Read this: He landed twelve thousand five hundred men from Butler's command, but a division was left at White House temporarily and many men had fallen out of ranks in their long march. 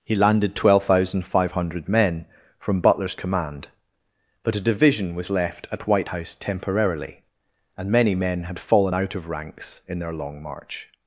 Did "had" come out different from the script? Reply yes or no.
no